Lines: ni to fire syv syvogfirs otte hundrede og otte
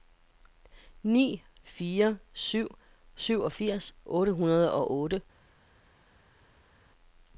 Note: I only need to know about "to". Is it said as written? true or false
false